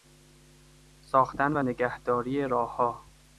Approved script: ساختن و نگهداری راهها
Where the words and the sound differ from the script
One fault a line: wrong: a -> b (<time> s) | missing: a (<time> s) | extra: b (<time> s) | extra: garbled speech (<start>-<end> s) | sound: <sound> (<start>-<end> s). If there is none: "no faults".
no faults